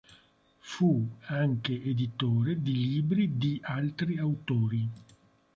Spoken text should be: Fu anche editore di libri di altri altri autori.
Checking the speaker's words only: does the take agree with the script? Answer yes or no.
no